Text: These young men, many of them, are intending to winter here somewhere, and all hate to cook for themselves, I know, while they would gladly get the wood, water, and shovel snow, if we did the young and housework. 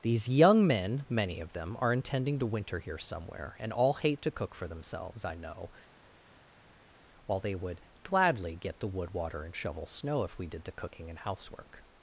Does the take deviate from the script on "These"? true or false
false